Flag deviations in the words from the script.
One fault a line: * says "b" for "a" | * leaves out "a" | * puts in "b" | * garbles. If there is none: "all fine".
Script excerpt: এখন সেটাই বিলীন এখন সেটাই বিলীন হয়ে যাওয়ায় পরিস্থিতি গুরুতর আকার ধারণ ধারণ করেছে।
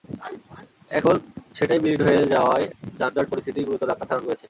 * leaves out "এখন সেটাই বিলীন"
* puts in "যানজট"
* leaves out "ধারণ"